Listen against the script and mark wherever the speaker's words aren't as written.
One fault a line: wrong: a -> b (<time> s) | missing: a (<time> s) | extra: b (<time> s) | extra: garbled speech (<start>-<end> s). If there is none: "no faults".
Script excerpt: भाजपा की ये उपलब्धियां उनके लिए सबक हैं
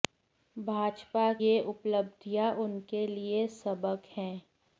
missing: की (1.2 s)